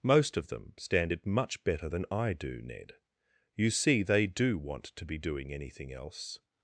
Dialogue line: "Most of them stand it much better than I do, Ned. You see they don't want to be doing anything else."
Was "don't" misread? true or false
true